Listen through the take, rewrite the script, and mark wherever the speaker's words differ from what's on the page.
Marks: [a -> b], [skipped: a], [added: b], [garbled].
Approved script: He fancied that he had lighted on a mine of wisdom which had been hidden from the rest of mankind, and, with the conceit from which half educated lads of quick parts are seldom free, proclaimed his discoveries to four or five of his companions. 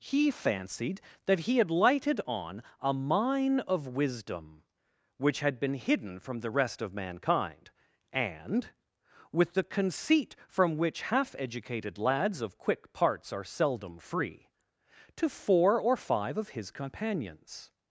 He fancied that he had lighted on a mine of wisdom which had been hidden from the rest of mankind, and, with the conceit from which half educated lads of quick parts are seldom free, [skipped: proclaimed his discoveries] to four or five of his companions.